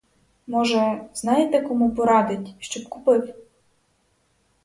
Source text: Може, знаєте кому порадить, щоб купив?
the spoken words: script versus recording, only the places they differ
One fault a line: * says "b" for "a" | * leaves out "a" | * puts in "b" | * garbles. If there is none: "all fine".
all fine